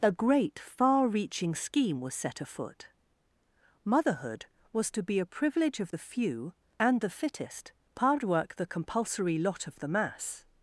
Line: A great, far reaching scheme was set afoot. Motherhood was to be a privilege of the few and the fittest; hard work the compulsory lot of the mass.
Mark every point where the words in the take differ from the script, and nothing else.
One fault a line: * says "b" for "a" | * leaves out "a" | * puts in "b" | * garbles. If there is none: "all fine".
all fine